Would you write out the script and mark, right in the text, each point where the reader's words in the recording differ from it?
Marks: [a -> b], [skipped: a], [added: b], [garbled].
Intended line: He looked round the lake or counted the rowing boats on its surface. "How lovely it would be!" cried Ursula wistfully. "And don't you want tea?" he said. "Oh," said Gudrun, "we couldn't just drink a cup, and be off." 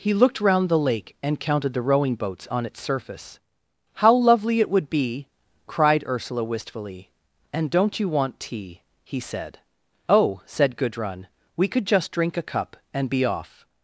He looked round the lake [or -> and] counted the rowing boats on its surface. "How lovely it would be!" cried Ursula wistfully. "And don't you want tea?" he said. "Oh," said Gudrun, "we [couldn't -> could] just drink a cup, and be off."